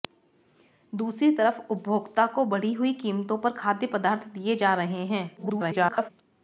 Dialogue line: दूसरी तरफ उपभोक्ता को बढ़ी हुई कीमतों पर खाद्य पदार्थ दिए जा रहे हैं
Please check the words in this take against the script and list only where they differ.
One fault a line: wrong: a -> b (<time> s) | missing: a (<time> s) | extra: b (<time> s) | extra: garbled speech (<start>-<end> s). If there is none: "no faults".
extra: garbled speech (5.4-6.1 s)